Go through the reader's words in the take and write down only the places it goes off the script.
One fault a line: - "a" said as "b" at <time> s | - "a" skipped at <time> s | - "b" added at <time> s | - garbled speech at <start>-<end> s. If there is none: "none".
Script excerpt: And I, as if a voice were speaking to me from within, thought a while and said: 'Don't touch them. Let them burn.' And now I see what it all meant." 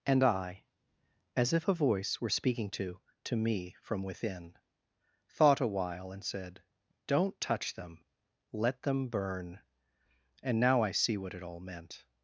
- "to" added at 3.3 s